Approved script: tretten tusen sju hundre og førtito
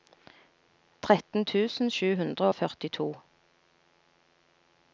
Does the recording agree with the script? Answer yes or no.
yes